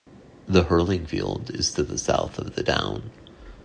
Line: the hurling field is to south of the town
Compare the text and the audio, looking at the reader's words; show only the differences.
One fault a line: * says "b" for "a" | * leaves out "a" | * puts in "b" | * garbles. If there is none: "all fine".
* puts in "the"